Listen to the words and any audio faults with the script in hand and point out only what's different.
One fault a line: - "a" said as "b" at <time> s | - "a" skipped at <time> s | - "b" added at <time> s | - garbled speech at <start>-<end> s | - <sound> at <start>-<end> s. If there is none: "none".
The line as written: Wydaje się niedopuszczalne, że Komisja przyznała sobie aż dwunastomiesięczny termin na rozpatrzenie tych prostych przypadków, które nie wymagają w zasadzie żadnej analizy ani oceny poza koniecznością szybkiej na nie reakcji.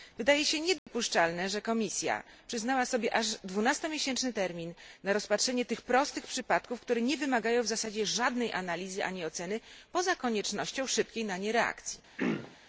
- dropout at 0.8-0.9 s
- throat clearing at 12.2-12.6 s